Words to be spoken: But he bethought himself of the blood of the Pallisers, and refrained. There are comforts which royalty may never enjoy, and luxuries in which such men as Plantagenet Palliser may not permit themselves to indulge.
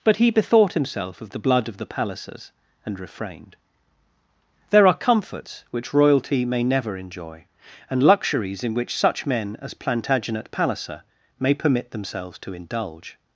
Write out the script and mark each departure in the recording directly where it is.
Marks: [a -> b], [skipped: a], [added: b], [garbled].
But he bethought himself of the blood of the Pallisers, and refrained. There are comforts which royalty may never enjoy, and luxuries in which such men as Plantagenet Palliser may [skipped: not] permit themselves to indulge.